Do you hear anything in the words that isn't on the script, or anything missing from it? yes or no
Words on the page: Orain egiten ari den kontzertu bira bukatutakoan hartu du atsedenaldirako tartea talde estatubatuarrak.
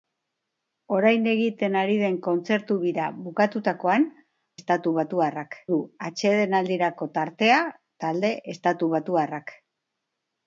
yes